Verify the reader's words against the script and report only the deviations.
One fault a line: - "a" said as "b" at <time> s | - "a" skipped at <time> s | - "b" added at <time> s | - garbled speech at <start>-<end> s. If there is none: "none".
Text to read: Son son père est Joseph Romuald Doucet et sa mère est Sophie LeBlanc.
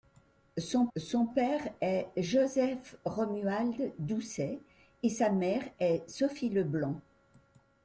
none